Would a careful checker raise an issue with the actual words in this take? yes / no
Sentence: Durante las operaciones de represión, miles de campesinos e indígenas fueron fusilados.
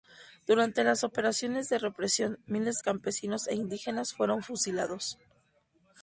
yes